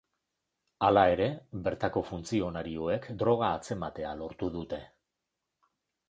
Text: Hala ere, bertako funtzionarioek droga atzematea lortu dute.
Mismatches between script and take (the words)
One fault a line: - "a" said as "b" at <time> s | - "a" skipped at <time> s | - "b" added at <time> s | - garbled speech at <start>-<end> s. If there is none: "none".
none